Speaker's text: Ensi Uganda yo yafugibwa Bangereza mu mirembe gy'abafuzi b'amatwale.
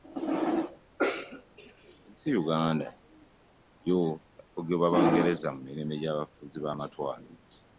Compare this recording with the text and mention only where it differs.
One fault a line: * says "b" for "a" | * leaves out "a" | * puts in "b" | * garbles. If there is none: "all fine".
all fine